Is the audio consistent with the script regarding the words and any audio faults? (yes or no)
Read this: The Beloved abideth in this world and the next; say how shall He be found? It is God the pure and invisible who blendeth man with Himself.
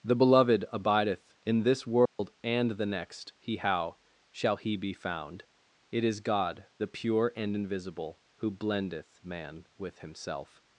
no